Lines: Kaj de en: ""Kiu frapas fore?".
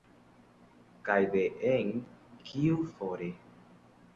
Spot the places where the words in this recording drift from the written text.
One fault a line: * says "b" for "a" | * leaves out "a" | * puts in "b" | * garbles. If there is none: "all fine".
* leaves out "frapas"